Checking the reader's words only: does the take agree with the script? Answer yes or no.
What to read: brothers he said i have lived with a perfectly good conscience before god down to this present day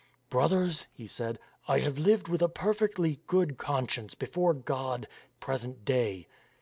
no